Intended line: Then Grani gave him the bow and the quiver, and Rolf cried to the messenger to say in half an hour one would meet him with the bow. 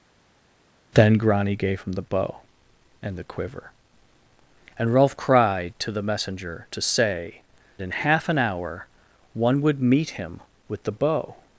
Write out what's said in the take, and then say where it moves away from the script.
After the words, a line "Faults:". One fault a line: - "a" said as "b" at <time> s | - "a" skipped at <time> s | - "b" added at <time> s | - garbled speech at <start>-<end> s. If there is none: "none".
Then Grani gave him the bow and the quiver, and Rolf cried to the messenger to say in half an hour one would meet him with the bow.
Faults:
none